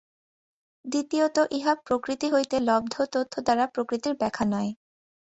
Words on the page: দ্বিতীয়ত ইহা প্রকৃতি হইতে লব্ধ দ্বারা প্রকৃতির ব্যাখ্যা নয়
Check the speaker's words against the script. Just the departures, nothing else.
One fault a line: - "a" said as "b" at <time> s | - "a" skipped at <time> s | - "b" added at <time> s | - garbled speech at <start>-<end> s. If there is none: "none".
- "তথ্য" added at 3.1 s